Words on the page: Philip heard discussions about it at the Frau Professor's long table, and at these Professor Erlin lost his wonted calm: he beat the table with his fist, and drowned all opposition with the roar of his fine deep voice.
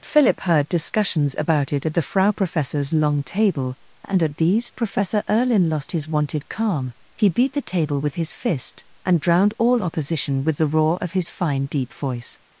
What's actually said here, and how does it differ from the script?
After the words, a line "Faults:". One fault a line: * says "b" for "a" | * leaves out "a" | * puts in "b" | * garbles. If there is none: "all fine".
Philip heard discussions about it at the Frau Professor's long table, and at these Professor Erlin lost his wonted calm: he beat the table with his fist, and drowned all opposition with the roar of his fine deep voice.
Faults:
all fine